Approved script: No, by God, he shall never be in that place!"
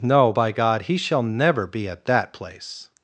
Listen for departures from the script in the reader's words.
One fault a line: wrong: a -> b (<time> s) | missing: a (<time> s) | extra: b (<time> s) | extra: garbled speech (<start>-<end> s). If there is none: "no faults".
wrong: in -> at (1.9 s)